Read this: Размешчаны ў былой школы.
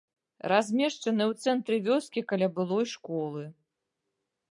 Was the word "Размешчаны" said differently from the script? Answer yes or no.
no